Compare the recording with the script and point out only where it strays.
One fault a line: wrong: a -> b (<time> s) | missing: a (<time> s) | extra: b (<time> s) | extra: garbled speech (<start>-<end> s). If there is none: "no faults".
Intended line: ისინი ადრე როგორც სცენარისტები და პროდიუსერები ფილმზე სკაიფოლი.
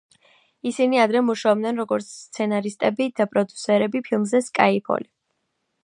extra: მუშაობდნენ (1.3 s)